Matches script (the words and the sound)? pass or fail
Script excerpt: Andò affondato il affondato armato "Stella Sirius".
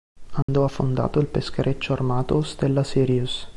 fail